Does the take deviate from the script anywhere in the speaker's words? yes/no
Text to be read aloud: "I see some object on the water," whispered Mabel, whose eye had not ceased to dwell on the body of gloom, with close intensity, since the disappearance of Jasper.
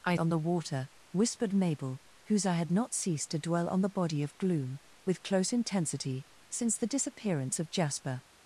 yes